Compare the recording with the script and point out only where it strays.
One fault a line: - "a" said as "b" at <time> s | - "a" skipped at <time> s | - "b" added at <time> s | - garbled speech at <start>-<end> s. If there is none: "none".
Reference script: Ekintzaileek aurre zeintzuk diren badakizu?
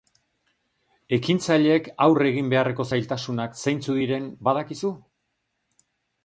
- "egin beharreko zailtasunak" added at 2.3 s